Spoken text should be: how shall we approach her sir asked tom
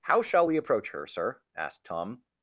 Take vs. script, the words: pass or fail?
pass